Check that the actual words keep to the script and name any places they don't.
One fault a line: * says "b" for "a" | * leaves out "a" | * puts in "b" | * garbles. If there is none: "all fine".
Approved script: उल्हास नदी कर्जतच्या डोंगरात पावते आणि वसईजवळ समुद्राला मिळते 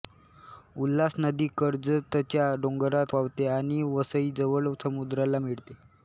all fine